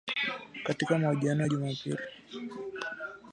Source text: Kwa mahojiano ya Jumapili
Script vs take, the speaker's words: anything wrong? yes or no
yes